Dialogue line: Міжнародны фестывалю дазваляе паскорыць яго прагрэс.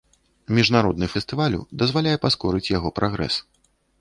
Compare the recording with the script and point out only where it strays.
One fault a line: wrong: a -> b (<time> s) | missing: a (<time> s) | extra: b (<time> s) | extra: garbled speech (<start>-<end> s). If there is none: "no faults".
no faults